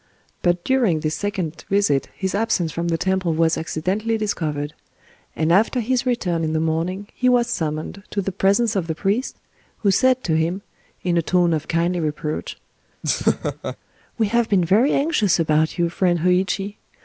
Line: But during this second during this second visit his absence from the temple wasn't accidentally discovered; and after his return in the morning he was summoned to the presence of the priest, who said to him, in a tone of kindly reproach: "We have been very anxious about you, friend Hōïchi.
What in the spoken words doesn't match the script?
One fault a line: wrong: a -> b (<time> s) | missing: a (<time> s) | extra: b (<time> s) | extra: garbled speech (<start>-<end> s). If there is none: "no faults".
missing: during this second (1.6 s)
wrong: wasn't -> was (3.4 s)